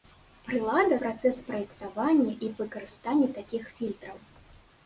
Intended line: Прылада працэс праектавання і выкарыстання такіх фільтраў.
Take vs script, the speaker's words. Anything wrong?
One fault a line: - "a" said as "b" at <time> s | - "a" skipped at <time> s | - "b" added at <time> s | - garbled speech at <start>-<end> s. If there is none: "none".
none